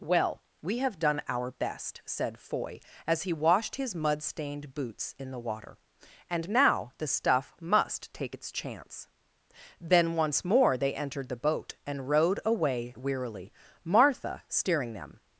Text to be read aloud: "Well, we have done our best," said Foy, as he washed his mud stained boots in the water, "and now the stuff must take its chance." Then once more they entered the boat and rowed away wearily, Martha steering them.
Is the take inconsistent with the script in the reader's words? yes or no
no